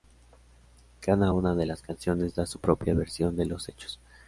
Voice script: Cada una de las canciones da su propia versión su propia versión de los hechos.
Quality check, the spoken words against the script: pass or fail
fail